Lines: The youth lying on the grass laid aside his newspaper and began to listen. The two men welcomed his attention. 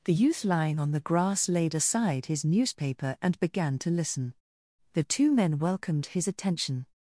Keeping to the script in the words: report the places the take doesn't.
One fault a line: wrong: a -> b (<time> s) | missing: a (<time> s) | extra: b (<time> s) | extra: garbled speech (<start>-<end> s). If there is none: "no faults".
no faults